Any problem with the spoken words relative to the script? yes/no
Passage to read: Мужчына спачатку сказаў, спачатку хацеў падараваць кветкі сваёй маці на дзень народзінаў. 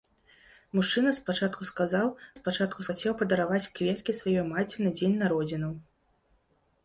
no